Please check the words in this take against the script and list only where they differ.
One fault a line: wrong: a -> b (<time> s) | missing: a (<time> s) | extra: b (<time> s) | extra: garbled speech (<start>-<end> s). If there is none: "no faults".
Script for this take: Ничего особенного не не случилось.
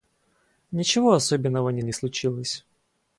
no faults